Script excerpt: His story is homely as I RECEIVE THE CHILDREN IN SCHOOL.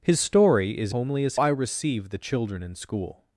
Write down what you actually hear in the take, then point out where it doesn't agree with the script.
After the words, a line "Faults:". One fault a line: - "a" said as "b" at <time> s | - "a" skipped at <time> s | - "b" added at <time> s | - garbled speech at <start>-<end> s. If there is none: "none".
His story is homely as I RECEIVE THE CHILDREN IN SCHOOL.
Faults:
none